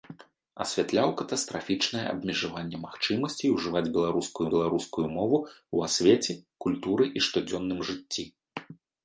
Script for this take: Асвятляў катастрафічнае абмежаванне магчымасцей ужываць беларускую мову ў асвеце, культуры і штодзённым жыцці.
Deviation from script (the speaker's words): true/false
true